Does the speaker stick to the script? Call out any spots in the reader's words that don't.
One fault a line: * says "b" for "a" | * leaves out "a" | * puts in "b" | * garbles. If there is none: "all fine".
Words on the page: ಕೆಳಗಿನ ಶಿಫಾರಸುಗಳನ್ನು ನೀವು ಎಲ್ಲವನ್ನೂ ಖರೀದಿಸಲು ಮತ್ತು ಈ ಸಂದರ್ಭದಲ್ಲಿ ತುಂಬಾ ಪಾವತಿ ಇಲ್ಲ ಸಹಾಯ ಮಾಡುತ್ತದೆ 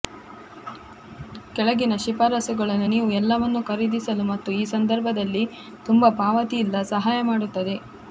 all fine